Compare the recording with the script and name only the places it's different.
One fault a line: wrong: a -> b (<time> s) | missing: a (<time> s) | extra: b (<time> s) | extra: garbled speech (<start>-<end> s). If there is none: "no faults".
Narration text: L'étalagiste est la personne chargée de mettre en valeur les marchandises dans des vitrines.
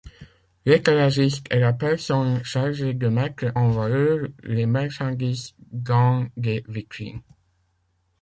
no faults